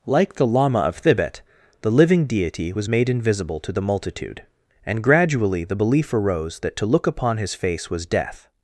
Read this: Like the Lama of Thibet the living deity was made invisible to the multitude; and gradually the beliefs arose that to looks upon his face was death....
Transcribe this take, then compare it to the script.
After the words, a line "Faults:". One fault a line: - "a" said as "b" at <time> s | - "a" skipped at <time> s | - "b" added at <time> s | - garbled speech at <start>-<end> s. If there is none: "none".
Like the Lama of Thibet the living deity was made invisible to the multitude; and gradually the belief arose that to look upon his face was death....
Faults:
- "beliefs" said as "belief" at 5.7 s
- "looks" said as "look" at 6.9 s